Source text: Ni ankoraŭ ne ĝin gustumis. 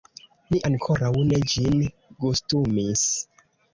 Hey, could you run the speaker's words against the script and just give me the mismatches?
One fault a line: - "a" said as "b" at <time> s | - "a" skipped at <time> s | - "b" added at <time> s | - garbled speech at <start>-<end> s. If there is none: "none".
none